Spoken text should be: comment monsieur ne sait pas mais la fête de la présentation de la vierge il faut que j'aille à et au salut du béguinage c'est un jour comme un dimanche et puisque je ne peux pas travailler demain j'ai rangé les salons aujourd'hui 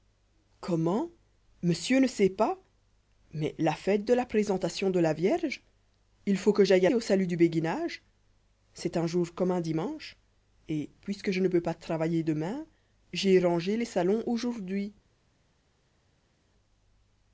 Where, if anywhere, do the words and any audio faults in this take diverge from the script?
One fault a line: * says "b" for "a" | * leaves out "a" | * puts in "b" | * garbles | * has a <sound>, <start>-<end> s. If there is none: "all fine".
all fine